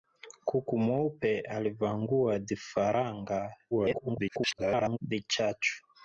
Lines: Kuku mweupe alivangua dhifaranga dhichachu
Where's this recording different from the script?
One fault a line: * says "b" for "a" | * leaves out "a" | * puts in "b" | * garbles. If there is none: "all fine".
* garbles